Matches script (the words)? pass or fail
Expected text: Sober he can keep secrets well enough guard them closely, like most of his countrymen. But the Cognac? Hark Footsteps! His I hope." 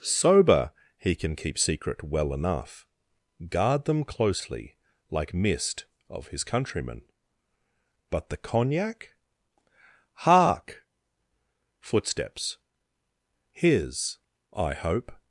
fail